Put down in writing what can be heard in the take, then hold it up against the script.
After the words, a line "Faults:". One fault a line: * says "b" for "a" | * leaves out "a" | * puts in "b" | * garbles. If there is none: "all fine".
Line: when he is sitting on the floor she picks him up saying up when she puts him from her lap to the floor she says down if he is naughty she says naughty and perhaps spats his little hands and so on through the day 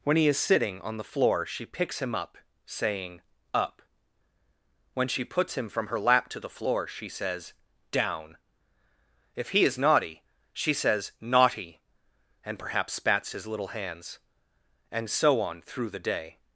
when he is sitting on the floor she picks him up saying up when she puts him from her lap to the floor she says down if he is naughty she says naughty and perhaps spats his little hands and so on through the day
Faults:
all fine